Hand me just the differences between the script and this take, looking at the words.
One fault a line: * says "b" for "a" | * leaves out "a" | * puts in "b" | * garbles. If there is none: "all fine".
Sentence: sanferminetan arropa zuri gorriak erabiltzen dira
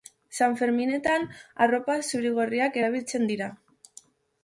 all fine